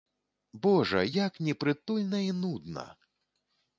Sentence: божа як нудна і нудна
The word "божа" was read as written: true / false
true